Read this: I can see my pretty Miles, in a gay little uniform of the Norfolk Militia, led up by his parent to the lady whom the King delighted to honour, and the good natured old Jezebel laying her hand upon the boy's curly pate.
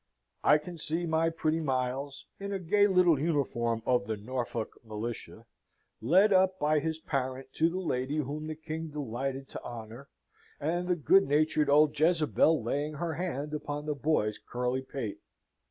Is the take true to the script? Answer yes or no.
yes